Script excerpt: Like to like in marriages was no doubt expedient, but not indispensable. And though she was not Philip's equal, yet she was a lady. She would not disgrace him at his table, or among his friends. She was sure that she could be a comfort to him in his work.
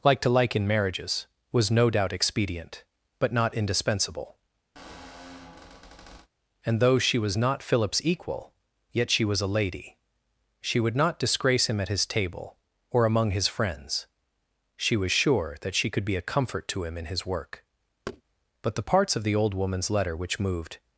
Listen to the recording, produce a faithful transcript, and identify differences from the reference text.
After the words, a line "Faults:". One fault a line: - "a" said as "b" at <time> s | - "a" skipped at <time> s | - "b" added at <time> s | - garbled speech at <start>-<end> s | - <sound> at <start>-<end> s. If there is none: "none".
Like to like in marriages was no doubt expedient, but not indispensable. And though she was not Philip's equal, yet she was a lady. She would not disgrace him at his table, or among his friends. She was sure that she could be a comfort to him in his work. But the parts of the old woman's letter which moved
Faults:
- squeak at 4.8-6.3 s
- thud at 18.1-18.2 s
- "But the parts of the old woman's letter which moved" added at 18.6 s